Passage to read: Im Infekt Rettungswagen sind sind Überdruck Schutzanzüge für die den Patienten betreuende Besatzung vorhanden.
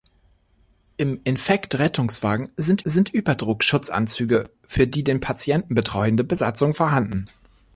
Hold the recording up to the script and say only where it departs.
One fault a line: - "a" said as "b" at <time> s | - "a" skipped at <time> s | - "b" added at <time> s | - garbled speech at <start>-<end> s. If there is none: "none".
none